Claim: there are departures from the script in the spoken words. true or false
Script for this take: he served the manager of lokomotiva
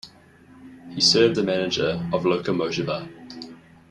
false